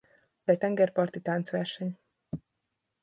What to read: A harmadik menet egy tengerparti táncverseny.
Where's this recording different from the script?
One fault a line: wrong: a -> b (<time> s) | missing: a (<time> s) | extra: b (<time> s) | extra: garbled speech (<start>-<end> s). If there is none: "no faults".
missing: harmadik menet (0.5 s)